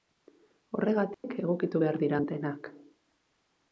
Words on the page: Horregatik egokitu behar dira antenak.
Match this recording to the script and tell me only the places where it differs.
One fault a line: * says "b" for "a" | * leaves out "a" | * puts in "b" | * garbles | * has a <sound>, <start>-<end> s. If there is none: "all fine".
* has a dropout, 1.1-1.2 s